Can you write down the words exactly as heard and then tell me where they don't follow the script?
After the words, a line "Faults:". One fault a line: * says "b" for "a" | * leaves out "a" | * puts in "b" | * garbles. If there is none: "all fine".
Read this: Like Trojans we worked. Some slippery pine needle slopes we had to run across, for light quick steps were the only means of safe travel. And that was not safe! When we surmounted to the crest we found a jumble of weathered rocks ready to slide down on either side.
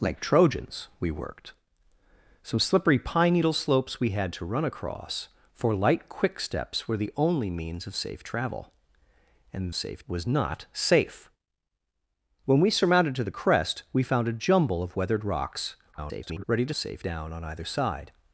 Like Trojans we worked. Some slippery pine needle slopes we had to run across, for light quick steps were the only means of safe travel. And safe was not safe! When we surmounted to the crest we found a jumble of weathered rocks [garbled] ready to safe down on either side.
Faults:
* says "safe" for "that"
* garbles
* says "safe" for "slide"